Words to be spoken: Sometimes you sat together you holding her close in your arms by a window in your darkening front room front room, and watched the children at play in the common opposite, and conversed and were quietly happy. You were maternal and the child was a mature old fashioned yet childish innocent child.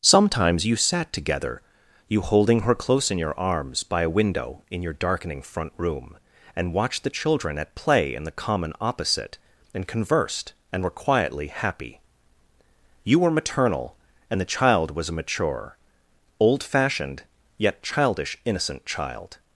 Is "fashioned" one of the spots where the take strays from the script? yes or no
no